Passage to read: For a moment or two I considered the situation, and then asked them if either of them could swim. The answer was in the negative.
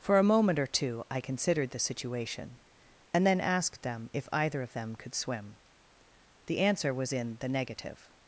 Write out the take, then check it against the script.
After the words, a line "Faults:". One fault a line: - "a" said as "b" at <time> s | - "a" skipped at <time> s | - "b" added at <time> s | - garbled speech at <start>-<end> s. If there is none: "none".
For a moment or two I considered the situation, and then asked them if either of them could swim. The answer was in the negative.
Faults:
none